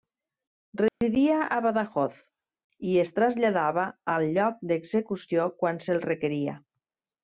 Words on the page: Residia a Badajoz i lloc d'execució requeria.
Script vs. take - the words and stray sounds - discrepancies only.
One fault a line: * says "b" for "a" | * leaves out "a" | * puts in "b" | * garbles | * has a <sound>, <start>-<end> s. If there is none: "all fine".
* has a dropout, 0.9-1.0 s
* puts in "es traslladava al"
* puts in "quan se'l"